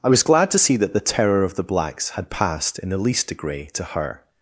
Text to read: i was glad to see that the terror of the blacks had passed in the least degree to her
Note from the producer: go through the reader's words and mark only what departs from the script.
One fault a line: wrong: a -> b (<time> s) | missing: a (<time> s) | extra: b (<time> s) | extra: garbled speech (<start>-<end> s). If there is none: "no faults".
no faults